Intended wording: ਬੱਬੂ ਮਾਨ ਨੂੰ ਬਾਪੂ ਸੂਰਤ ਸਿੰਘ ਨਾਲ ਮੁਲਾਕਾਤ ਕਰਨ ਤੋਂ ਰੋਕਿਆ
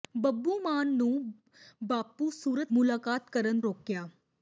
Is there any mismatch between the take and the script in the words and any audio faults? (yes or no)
yes